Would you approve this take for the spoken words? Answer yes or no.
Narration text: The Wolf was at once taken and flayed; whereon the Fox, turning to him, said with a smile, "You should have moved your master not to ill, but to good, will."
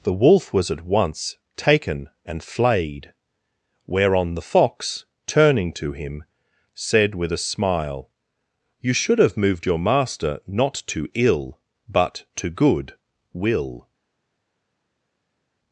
yes